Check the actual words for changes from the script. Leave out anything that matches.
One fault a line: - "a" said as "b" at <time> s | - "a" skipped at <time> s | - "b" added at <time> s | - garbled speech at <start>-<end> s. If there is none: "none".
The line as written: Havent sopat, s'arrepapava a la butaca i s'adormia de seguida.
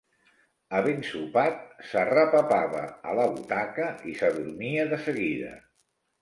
none